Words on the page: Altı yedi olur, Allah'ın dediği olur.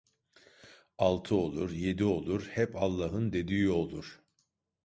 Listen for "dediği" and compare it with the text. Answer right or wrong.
right